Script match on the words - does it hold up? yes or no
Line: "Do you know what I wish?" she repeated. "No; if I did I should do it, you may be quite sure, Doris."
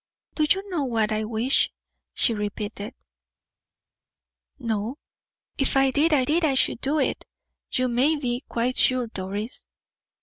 no